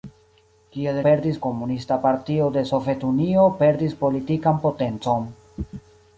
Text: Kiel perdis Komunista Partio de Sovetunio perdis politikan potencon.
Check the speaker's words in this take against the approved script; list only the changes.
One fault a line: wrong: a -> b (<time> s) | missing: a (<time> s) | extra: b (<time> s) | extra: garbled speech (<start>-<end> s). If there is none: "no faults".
no faults